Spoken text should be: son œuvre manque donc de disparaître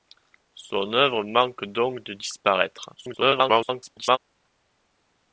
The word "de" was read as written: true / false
true